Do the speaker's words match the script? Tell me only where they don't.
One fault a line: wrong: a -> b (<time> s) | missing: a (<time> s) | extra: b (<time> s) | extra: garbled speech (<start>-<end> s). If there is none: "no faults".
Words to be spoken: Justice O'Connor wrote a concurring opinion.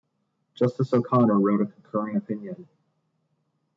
no faults